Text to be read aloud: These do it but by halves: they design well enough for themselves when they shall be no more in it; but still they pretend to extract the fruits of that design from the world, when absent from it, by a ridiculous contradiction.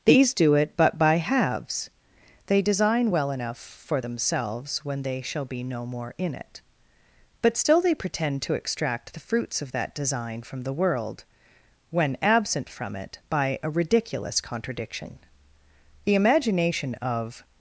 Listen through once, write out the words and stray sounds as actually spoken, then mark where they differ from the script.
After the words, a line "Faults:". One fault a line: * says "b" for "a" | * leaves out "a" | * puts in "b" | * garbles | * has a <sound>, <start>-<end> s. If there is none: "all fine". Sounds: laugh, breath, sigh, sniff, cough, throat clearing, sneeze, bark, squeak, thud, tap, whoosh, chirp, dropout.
These do it but by halves: they design well enough for themselves when they shall be no more in it; but still they pretend to extract the fruits of that design from the world, when absent from it, by a ridiculous contradiction. The imagination of
Faults:
* puts in "The imagination of"